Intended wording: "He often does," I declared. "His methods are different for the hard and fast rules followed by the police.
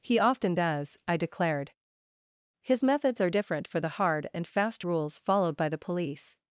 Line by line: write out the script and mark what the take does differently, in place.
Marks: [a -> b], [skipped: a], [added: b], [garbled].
"He often does," I declared. "His methods are different for the hard and fast rules followed by the police.